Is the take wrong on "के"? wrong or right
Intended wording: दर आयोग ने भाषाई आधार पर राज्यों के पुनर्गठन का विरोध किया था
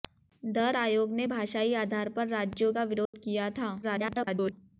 wrong